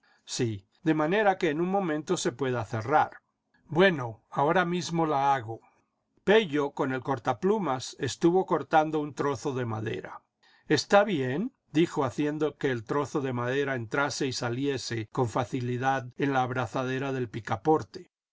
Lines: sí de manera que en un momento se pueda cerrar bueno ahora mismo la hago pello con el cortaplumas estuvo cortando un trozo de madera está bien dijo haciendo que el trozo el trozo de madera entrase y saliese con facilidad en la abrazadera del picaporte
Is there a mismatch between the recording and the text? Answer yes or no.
yes